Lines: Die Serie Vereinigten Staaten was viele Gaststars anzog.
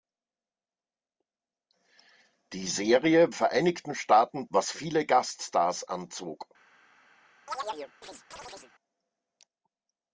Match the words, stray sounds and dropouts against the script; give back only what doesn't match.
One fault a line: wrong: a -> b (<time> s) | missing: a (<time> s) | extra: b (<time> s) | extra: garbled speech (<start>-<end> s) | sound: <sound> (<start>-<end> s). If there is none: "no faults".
sound: chirp (7.5-8.7 s)